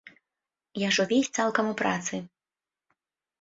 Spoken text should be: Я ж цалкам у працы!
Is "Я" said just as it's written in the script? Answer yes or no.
yes